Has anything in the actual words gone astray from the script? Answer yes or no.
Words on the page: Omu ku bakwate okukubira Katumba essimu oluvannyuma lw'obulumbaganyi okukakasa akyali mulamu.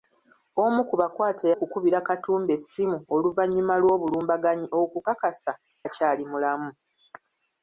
no